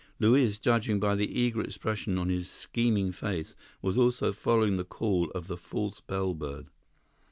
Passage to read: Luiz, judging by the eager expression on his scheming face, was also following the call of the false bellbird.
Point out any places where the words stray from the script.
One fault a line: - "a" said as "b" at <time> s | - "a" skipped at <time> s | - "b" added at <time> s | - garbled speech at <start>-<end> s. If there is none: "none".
none